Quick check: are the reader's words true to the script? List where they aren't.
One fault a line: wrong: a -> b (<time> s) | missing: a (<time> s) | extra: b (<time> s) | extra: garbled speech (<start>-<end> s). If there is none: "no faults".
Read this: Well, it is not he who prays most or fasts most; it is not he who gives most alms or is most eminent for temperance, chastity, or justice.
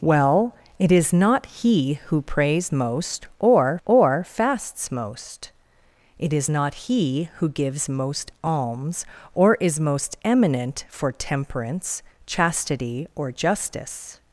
extra: or (3.8 s)